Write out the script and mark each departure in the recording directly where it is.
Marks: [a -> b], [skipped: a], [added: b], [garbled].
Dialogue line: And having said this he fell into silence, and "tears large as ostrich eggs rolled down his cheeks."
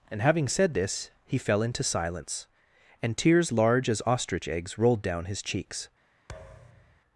And having said this he fell into silence, and "tears large as ostrich eggs rolled down his cheeks."